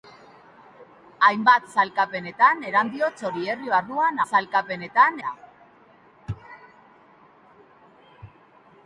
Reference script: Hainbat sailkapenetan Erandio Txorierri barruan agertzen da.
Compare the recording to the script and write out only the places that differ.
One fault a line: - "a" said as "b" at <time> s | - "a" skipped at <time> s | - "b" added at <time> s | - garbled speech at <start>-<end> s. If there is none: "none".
- "agertzen" said as "sailkapenetan" at 4.3 s